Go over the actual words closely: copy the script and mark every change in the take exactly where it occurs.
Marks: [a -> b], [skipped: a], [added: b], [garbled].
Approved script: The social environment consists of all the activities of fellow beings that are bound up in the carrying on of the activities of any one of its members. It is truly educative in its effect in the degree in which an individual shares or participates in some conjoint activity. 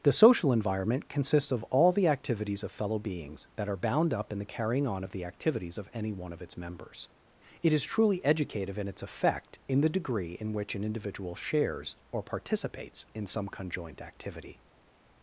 The social environment consists of all the activities of fellow beings that are bound up in the carrying on of the activities of any one of its members. It is truly educative in its effect in the degree in which an individual shares or participates in some conjoint activity.